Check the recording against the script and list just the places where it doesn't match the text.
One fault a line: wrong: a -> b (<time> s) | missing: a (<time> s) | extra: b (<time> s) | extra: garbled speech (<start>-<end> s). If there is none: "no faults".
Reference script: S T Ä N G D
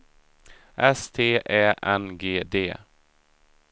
no faults